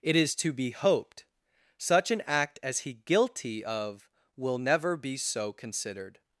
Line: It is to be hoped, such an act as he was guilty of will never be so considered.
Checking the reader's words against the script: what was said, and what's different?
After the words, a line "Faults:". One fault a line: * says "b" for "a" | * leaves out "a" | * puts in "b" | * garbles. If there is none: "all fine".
It is to be hoped, such an act as he guilty of will never be so considered.
Faults:
* leaves out "was"